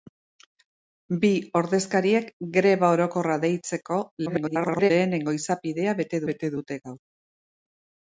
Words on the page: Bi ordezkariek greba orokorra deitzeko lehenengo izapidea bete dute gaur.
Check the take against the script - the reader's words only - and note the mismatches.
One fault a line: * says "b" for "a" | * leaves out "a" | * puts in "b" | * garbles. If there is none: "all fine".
* garbles
* puts in "bete"